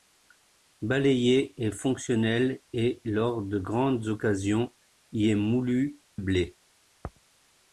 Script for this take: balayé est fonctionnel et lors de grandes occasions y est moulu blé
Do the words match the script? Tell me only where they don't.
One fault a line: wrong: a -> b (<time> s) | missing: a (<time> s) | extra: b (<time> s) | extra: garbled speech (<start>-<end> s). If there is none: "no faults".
no faults